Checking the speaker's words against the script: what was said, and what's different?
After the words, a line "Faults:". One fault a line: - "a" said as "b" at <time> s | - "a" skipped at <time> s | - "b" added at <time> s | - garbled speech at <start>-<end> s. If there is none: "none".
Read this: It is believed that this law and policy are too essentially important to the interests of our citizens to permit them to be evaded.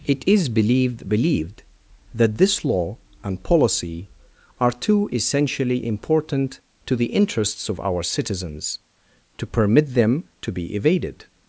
It is believed believed that this law and policy are too essentially important to the interests of our citizens to permit them to be evaded.
Faults:
- "believed" added at 1.1 s